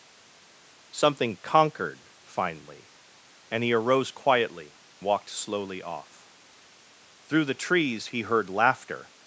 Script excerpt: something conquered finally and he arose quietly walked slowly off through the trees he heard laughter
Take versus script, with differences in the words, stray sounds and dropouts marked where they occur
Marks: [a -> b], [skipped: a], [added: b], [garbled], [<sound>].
something conquered finally and he arose quietly walked slowly off through the trees he heard laughter